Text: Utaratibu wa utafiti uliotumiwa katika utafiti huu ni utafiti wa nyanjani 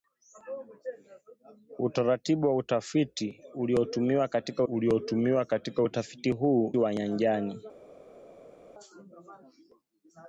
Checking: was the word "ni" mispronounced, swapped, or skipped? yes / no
yes